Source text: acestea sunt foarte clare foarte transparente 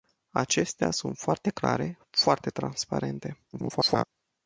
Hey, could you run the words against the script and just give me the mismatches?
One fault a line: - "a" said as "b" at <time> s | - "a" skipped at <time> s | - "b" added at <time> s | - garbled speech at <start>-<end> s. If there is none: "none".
- garbled speech at 3.5-4.0 s